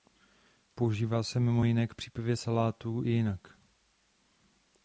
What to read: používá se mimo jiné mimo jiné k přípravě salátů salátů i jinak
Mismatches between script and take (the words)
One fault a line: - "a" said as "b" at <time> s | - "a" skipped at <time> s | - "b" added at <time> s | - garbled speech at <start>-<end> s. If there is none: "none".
- "mimo jiné" skipped at 1.9 s
- "salátů" skipped at 3.0 s